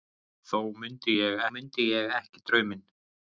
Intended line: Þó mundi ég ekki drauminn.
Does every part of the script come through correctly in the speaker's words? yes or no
no